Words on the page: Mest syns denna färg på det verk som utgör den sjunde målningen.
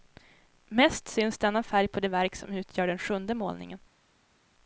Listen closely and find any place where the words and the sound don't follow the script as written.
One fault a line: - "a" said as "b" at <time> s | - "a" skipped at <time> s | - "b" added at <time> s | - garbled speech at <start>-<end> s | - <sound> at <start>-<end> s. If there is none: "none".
none